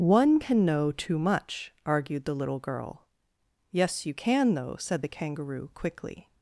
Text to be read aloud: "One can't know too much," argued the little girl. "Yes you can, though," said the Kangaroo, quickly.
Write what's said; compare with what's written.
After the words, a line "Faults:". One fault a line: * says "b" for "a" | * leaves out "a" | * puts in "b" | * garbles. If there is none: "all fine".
"One can know too much," argued the little girl. "Yes you can, though," said the Kangaroo, quickly.
Faults:
* says "can" for "can't"